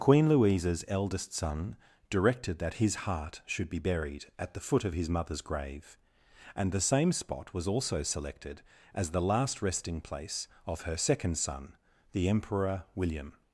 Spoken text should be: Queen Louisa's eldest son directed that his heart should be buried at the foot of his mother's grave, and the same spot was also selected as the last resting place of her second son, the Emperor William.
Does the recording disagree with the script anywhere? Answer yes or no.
no